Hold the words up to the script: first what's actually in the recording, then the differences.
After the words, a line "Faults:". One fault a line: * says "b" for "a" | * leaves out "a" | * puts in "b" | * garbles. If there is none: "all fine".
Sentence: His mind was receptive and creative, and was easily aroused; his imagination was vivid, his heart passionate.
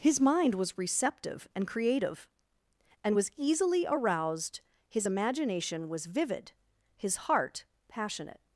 His mind was receptive and creative, and was easily aroused; his imagination was vivid, his heart passionate.
Faults:
all fine